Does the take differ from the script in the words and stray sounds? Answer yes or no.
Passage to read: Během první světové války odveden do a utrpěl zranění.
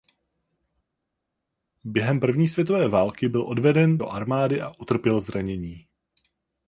yes